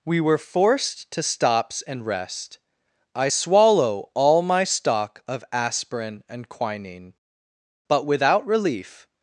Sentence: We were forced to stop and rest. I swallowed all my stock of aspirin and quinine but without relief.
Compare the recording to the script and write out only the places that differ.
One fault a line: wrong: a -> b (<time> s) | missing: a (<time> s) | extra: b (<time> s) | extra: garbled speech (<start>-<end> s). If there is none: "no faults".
wrong: stop -> stops (1.2 s)
wrong: swallowed -> swallow (3.3 s)